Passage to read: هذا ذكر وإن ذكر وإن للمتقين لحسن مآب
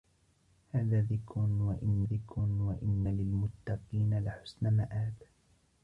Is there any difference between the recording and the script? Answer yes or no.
no